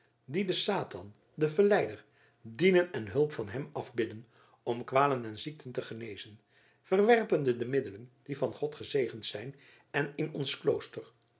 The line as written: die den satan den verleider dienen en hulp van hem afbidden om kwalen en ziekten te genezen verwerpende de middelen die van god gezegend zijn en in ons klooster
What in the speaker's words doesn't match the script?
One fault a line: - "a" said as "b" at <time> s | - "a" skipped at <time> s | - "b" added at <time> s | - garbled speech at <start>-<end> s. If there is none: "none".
none